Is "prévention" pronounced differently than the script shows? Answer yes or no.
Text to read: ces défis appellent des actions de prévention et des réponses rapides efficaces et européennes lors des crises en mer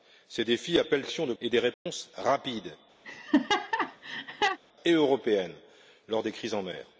yes